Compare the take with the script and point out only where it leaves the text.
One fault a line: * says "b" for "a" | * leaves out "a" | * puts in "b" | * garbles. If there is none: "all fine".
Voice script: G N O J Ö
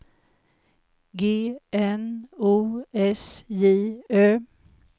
* puts in "S"